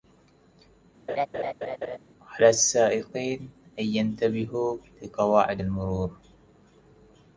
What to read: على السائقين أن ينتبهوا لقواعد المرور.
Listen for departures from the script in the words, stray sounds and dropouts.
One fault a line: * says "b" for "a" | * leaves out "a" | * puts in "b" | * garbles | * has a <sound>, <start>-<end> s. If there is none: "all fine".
* has a laugh, 1.1-2.0 s